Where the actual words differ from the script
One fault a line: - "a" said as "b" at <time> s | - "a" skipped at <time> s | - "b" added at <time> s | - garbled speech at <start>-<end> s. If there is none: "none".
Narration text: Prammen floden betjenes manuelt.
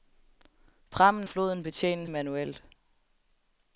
none